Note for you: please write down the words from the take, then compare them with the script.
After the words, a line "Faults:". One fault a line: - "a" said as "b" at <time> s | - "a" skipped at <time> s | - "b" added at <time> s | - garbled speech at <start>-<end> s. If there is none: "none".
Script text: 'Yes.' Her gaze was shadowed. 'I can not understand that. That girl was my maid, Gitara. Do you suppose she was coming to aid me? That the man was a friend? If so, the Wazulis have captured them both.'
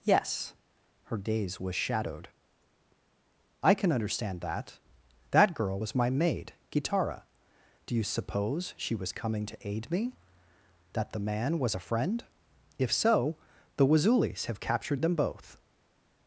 'Yes.' Her gaze was shadowed. 'I can understand that. That girl was my maid, Gitara. Do you suppose she was coming to aid me? That the man was a friend? If so, the Wazulis have captured them both.'
Faults:
- "not" skipped at 3.9 s